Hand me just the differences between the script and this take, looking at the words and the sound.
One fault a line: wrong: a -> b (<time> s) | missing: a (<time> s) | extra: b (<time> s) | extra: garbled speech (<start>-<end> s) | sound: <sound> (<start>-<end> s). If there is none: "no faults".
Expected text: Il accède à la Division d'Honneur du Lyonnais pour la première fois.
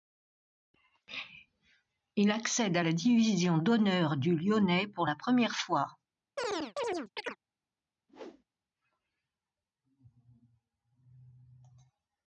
sound: chirp (6.4-7.4 s)
sound: whoosh (8.1-8.4 s)